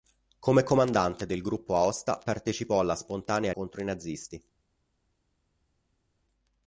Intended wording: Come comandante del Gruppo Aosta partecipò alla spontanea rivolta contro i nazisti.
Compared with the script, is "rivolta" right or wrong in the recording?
wrong